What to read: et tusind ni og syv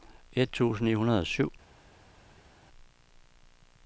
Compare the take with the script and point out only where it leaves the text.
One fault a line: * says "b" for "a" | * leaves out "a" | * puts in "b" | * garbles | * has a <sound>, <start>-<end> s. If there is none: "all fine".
* puts in "hundrede"